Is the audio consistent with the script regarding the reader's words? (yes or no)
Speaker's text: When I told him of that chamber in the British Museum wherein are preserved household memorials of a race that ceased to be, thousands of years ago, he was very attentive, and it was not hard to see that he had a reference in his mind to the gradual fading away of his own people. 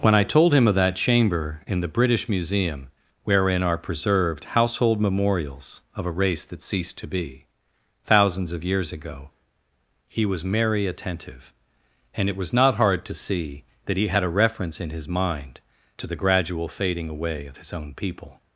no